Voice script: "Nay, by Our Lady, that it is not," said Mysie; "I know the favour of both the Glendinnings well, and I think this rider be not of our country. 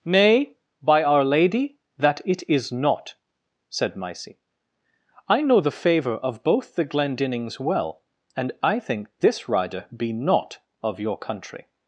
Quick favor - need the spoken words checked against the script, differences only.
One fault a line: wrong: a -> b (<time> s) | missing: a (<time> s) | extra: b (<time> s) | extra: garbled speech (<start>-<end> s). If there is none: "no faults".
wrong: our -> your (11.0 s)